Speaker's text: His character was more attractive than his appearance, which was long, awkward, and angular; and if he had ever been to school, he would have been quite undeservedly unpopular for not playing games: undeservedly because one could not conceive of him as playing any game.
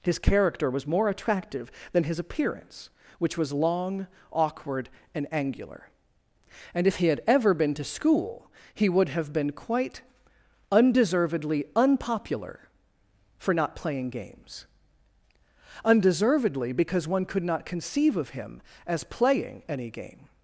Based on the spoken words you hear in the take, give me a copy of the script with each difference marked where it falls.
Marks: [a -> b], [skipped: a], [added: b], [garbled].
His character was more attractive than his appearance, which was long, awkward, and angular; and if he had ever been to school, he would have been quite undeservedly unpopular for not playing games: undeservedly because one could not conceive of him as playing any game.